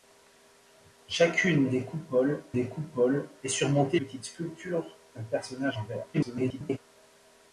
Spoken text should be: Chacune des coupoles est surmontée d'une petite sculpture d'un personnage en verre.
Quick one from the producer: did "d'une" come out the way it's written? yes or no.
no